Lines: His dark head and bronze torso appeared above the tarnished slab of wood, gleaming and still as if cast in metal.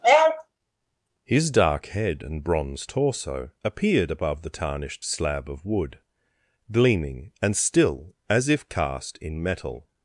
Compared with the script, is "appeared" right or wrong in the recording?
right